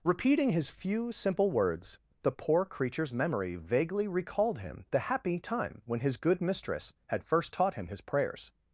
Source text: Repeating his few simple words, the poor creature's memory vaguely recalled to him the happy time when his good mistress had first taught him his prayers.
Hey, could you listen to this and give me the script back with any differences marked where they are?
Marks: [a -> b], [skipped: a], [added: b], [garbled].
Repeating his few simple words, the poor creature's memory vaguely recalled [skipped: to] him the happy time when his good mistress had first taught him his prayers.